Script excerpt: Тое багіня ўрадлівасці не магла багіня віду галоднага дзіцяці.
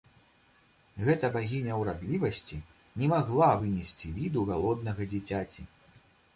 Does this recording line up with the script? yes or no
no